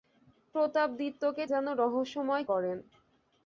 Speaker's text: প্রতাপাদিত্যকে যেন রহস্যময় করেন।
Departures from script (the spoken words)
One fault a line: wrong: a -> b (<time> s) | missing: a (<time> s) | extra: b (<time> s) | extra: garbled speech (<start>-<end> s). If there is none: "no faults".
no faults